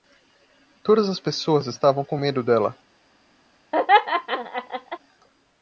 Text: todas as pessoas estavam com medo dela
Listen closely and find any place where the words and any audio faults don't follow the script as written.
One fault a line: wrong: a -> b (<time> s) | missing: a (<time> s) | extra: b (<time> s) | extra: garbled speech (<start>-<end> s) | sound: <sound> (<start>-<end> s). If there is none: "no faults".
sound: laugh (3.7-5.0 s)